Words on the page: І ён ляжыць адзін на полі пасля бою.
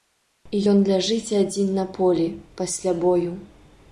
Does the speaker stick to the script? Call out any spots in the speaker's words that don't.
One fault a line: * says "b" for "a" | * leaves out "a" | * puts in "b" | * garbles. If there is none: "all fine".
all fine